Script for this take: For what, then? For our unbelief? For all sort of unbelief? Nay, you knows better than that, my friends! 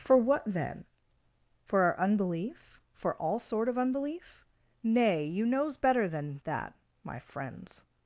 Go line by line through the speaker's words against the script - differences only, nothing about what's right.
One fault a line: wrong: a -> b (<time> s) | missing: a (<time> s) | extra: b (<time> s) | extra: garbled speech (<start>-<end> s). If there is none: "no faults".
no faults